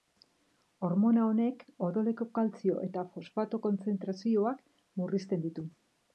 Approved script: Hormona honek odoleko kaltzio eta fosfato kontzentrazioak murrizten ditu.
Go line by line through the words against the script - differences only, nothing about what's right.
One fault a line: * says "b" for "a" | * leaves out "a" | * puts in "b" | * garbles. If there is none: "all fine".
all fine